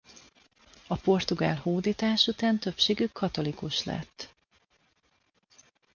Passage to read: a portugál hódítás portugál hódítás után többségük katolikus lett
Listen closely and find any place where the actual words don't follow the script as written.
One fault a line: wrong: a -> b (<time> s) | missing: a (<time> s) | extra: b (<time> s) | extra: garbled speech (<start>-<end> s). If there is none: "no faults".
missing: portugál hódítás (2.3 s)